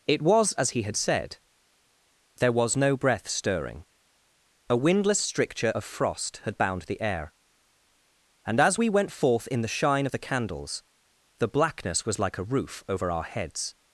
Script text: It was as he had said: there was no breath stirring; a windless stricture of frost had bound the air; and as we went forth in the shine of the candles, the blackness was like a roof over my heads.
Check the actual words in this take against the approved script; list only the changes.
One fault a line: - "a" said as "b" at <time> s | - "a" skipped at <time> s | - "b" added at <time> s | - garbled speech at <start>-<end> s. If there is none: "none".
- "my" said as "our" at 13.1 s